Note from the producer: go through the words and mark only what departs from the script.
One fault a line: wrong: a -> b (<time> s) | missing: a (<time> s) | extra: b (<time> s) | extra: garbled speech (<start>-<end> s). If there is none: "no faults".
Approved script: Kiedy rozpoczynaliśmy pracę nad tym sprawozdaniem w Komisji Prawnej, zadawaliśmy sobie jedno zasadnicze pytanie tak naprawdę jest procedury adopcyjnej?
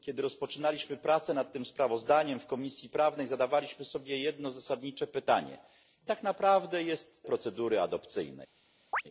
no faults